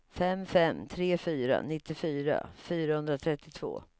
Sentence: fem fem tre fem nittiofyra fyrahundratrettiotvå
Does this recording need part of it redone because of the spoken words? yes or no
yes